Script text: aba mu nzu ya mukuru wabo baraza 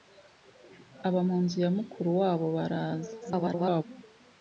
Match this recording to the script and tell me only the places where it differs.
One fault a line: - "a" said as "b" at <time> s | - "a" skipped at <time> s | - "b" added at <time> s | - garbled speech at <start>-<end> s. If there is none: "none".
- garbled speech at 3.2-3.8 s